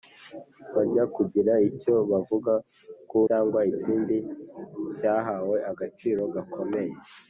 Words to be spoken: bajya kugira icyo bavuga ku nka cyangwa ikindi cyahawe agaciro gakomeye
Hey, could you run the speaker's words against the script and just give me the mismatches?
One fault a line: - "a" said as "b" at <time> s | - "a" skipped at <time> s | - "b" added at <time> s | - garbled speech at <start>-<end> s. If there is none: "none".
- "nka" skipped at 3.2 s